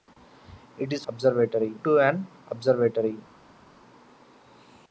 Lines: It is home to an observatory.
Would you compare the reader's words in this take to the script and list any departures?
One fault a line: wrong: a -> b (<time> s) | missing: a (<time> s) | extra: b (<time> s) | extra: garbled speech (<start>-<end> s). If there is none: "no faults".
wrong: home -> observatory (1.1 s)